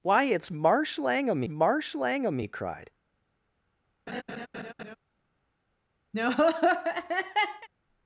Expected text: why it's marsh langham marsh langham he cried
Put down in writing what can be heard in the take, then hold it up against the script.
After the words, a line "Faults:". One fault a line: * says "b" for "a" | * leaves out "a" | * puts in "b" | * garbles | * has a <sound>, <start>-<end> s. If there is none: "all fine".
why it's marsh langham marsh langham he cried
Faults:
* has a laugh, 4.1-5.0 s
* has a laugh, 6.1-7.7 s